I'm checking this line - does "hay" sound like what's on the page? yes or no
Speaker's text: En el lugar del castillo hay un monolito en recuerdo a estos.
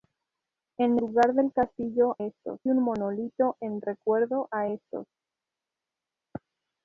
no